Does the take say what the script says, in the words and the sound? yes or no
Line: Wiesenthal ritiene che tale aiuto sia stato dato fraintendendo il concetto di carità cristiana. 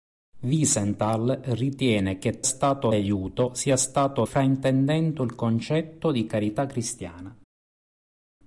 no